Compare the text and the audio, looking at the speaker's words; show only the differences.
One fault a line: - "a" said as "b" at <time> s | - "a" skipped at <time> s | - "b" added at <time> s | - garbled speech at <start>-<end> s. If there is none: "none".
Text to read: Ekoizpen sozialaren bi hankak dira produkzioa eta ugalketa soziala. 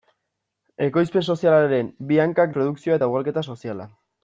- "dira" skipped at 2.5 s